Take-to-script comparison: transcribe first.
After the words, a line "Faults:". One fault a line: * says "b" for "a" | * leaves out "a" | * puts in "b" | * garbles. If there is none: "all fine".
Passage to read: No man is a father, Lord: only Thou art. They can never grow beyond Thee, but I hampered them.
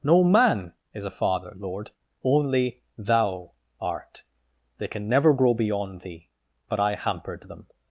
No man is a father, Lord: only Thou art. They can never grow beyond Thee, but I hampered them.
Faults:
all fine